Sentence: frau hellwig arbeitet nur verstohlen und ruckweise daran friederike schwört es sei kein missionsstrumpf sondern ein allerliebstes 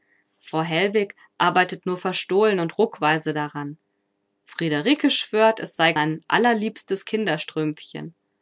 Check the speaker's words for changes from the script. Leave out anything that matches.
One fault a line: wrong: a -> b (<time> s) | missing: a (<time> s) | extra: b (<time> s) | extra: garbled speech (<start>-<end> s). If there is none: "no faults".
missing: kein missionsstrumpf sondern (5.9 s)